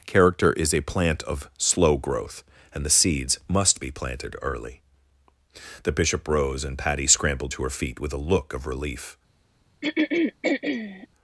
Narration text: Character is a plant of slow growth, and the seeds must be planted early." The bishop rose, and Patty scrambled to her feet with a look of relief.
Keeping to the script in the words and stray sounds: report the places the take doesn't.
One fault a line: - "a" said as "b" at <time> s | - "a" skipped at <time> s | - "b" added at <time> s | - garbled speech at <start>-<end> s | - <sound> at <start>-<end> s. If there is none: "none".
- throat clearing at 9.8-11.1 s